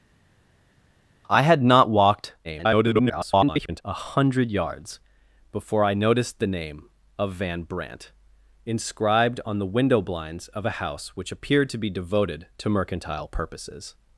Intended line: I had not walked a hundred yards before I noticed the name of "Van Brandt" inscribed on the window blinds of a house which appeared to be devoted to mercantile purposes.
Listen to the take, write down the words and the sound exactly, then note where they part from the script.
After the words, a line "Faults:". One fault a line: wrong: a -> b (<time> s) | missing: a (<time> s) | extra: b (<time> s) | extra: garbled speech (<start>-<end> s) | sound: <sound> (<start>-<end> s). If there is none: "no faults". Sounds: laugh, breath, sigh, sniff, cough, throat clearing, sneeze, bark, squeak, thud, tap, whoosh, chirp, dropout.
I had not walked [garbled] a hundred yards before I noticed the name of "Van Brandt" inscribed on the window blinds of a house which appeared to be devoted to mercantile purposes.
Faults:
extra: garbled speech (2.4-3.8 s)